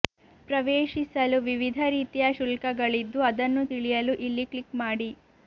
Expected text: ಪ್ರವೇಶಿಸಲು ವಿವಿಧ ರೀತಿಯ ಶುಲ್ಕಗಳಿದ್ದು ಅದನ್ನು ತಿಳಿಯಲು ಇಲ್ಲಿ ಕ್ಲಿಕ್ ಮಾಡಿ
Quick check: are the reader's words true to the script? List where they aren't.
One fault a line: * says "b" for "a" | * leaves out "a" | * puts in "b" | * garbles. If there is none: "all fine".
all fine